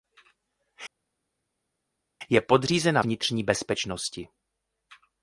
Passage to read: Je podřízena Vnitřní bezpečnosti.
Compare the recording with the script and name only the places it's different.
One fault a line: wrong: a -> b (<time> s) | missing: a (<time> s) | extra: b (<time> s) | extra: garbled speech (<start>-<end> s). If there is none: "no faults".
no faults